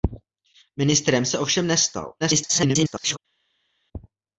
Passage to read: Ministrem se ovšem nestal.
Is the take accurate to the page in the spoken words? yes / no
no